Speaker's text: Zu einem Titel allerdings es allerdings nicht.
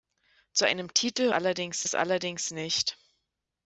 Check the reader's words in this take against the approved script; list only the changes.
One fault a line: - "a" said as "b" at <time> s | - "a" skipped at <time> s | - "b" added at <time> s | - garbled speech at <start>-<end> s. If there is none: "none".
none